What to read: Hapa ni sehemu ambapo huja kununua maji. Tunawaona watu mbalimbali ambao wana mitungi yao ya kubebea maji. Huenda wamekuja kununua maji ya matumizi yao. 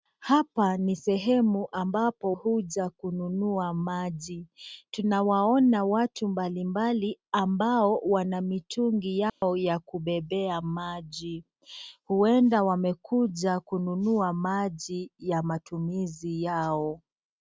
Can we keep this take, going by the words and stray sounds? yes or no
no